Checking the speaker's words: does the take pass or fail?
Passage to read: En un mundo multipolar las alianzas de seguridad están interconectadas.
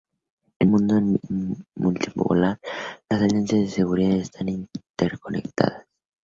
fail